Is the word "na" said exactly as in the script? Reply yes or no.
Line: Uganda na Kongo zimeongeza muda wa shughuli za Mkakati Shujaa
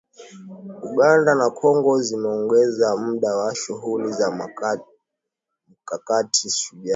yes